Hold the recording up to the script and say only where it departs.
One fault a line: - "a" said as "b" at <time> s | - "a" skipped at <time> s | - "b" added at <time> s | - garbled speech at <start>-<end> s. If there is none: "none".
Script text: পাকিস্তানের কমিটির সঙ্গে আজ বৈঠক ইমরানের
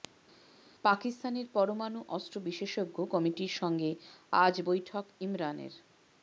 - "পরমাণু অস্ত্র বিশেষজ্ঞ" added at 1.5 s